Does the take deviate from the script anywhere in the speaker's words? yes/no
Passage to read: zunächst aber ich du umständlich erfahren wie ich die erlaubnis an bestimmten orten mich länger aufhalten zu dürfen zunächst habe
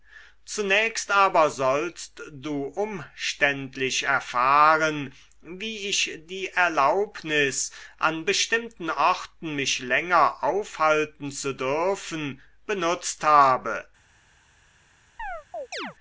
yes